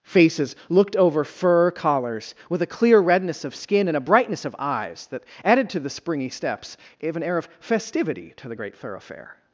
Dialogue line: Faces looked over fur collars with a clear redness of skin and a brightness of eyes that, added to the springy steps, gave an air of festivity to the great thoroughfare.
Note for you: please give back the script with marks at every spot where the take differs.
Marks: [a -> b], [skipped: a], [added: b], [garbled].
Faces looked over fur collars with a clear redness of skin and a brightness of eyes that, added to the springy steps, gave an air of festivity to the great thoroughfare.